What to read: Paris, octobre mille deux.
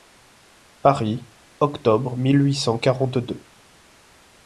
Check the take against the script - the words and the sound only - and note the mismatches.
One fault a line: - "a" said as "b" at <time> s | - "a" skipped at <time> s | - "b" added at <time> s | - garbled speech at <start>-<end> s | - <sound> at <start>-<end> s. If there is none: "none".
- "huit cent quarante" added at 2.4 s